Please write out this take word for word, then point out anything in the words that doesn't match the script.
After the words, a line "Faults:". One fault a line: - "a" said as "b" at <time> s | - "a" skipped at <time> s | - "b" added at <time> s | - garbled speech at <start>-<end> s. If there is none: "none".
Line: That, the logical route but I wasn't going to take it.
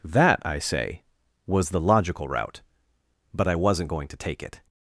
That, I say, was the logical route but I wasn't going to take it.
Faults:
- "I say was" added at 0.4 s